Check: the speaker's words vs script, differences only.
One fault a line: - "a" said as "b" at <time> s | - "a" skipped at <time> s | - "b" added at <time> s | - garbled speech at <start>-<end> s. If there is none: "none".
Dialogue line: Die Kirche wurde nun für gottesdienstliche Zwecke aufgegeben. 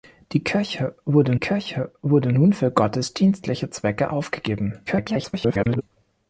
- "Kirche wurde" added at 1.4 s
- garbled speech at 4.9-5.8 s